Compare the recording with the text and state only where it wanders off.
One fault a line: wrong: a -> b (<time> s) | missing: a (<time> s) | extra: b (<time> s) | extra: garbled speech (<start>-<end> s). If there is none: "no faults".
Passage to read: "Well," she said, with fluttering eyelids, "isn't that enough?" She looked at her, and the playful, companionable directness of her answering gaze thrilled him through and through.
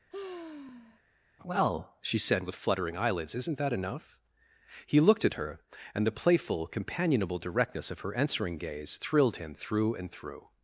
wrong: She -> He (4.9 s)